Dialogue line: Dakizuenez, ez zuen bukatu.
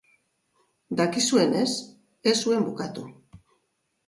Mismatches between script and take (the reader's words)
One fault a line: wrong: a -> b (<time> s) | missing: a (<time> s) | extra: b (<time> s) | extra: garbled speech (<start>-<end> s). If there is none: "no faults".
no faults